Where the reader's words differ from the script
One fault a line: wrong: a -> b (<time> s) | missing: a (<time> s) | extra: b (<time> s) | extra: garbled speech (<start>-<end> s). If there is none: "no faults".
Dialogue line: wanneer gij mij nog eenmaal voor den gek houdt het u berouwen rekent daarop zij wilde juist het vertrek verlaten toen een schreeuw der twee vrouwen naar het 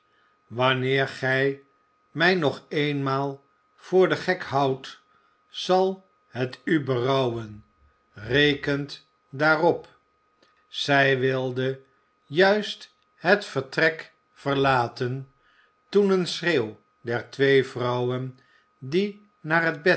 extra: zal (5.5 s)
extra: die (18.8 s)